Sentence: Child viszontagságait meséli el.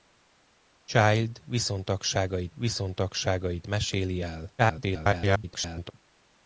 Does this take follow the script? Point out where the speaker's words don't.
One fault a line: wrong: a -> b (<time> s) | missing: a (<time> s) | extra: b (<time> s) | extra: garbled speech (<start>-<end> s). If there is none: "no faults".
extra: viszontagságait (2.5 s)
extra: garbled speech (4.6-5.9 s)